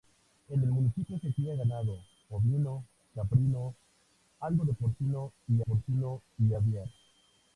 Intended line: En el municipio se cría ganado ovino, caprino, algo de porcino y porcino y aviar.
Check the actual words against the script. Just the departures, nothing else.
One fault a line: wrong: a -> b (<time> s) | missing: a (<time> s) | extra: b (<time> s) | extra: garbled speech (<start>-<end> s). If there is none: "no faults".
no faults